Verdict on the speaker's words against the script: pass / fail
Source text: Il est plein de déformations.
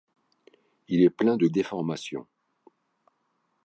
pass